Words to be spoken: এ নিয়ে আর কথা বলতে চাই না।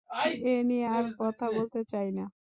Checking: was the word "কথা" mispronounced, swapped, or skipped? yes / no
no